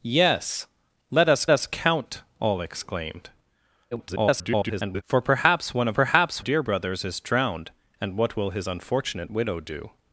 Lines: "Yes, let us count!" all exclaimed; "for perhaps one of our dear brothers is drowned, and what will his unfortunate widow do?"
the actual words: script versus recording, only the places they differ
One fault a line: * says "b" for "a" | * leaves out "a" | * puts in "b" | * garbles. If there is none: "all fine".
* puts in "us"
* garbles
* says "perhaps" for "our"